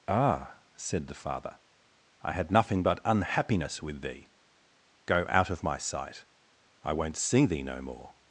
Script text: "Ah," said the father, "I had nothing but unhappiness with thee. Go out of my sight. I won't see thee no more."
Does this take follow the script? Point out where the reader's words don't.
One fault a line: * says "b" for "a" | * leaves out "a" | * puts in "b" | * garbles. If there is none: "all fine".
all fine